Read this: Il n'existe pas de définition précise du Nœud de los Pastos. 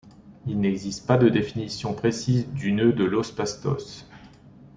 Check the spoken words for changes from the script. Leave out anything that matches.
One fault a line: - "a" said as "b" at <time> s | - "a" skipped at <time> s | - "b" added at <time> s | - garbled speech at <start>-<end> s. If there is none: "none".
none